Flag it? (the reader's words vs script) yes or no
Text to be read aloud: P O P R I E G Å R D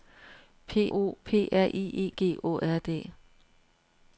no